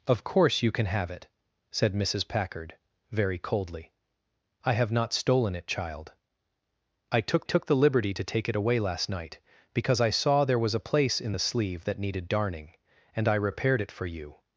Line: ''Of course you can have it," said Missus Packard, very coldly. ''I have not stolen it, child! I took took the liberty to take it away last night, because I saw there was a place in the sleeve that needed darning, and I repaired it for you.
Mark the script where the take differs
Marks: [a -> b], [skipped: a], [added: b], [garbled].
''Of course you can have it," said Missus Packard, very coldly. ''I have not stolen it, child! I took took the liberty to take it away last night, because I saw there was a place in the sleeve that needed darning, and I repaired it for you.